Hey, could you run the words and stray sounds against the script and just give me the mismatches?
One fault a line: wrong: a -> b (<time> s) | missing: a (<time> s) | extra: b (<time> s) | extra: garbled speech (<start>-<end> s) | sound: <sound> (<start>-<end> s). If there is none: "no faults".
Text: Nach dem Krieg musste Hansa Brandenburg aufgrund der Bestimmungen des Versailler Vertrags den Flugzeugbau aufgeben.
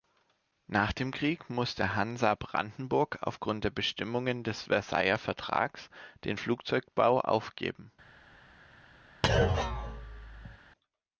sound: thud (9.2-10.6 s)